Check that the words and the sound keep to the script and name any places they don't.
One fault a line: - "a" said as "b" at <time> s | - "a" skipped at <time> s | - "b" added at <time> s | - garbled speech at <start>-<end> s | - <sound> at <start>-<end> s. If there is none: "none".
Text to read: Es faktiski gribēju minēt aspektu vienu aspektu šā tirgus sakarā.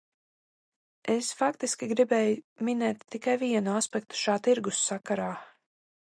- "aspektu" said as "tikai" at 3.2 s